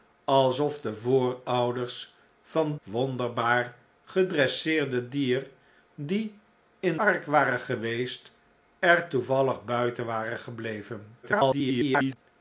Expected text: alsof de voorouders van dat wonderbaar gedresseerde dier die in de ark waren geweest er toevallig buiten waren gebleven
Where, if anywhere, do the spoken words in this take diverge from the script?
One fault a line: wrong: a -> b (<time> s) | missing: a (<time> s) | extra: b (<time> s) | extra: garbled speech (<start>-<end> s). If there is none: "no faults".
missing: dat (2.8 s)
missing: de (7.0 s)
extra: garbled speech (11.2-12.2 s)